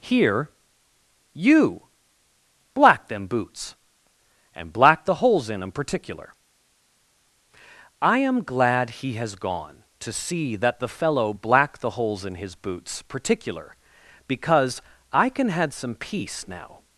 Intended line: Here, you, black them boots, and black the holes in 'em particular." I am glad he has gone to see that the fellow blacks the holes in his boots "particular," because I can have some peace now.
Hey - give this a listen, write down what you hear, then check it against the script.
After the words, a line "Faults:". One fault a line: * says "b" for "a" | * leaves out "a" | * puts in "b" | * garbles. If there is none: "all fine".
Here, you, black them boots, and black the holes in 'em particular." I am glad he has gone to see that the fellow black the holes in his boots "particular," because I can had some peace now.
Faults:
* says "black" for "blacks"
* says "had" for "have"